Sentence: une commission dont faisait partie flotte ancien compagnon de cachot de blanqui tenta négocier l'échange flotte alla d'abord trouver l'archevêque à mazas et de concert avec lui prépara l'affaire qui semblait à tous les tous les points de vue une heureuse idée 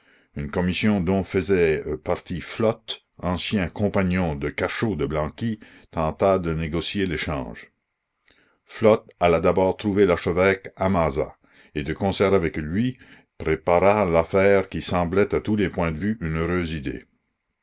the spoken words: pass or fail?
fail